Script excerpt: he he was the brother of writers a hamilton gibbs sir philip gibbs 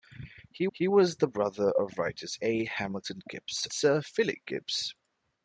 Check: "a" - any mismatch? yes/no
no